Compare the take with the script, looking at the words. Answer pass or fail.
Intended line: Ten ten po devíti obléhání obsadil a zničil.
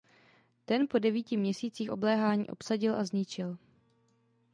fail